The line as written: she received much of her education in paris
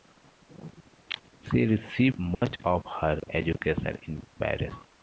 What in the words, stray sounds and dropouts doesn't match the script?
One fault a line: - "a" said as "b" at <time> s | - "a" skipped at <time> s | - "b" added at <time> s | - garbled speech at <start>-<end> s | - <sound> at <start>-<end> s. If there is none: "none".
- dropout at 2.3-2.4 s